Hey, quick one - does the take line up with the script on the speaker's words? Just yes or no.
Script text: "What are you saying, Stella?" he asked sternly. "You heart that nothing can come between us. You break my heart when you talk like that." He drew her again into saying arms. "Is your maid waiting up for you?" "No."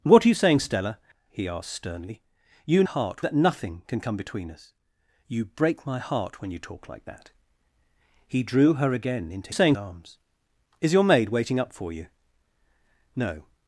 yes